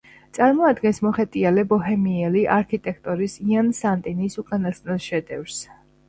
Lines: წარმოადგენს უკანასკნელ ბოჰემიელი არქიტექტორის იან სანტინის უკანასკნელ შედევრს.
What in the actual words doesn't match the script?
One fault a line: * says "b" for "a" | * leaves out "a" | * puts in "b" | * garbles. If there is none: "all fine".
* says "მოხეტიალე" for "უკანასკნელ"